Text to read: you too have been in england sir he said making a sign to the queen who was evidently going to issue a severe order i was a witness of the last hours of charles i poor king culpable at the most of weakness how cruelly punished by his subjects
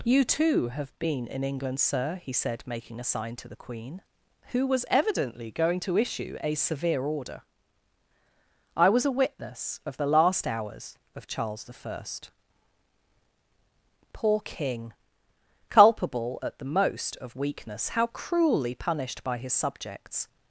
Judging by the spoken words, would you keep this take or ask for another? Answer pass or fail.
pass